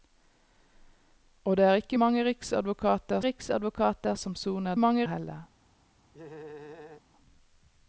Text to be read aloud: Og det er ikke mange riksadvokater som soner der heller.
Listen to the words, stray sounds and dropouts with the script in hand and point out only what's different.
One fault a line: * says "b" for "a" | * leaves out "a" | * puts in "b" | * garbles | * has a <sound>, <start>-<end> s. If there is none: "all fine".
* puts in "riksadvokater"
* says "mange" for "der"
* has a laugh, 6.1-7.0 s